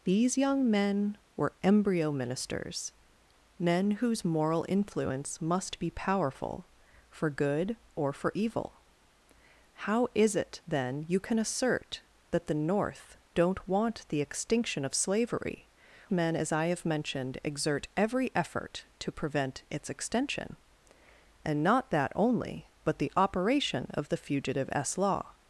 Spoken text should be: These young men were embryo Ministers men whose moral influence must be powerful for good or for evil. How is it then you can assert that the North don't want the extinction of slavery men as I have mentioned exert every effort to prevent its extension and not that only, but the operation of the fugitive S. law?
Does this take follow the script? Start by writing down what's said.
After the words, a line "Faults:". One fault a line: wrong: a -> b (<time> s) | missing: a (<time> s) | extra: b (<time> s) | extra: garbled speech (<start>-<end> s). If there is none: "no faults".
These young men were embryo Ministers men whose moral influence must be powerful for good or for evil. How is it then you can assert that the North don't want the extinction of slavery men as I have mentioned exert every effort to prevent its extension and not that only, but the operation of the fugitive S. law?
Faults:
no faults